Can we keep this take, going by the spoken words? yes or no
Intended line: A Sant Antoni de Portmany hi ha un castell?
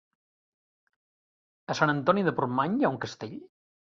yes